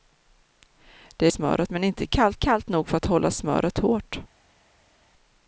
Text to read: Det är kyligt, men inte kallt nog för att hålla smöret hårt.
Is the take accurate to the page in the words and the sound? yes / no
no